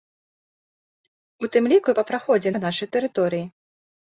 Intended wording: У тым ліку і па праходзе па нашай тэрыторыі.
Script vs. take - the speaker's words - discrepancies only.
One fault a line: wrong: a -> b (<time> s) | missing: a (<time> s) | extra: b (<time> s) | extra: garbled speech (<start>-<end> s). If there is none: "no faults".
no faults